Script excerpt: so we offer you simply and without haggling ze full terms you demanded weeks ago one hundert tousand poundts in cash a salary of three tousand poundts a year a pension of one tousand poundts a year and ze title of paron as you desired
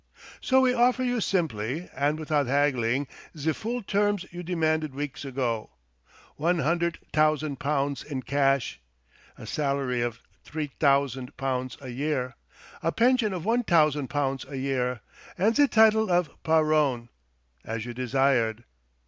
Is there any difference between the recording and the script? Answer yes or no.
no